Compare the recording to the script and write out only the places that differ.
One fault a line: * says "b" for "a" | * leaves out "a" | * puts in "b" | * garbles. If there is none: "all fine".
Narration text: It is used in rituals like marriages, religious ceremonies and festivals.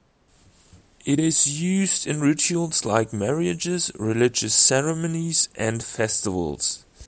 all fine